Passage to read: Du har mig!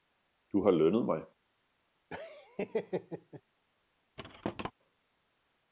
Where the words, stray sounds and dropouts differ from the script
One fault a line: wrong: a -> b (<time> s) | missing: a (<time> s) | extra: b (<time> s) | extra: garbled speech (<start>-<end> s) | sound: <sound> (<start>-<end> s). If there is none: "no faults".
extra: lønnet (0.7 s)
sound: laugh (2.1-3.4 s)
sound: thud (4.2-4.7 s)